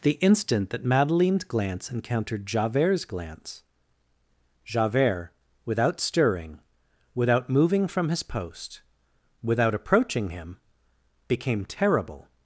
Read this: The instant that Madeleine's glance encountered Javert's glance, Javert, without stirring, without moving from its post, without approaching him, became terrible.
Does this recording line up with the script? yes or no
no